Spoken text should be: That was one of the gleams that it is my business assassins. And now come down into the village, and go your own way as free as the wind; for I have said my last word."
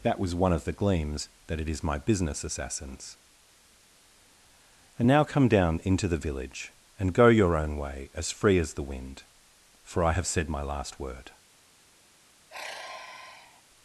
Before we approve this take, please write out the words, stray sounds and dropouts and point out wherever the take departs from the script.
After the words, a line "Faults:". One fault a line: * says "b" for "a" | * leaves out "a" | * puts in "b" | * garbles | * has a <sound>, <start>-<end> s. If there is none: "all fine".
That was one of the gleams that it is my business assassins. And now come down into the village, and go your own way as free as the wind; for I have said my last word."
Faults:
* has a sigh, 12.5-13.6 s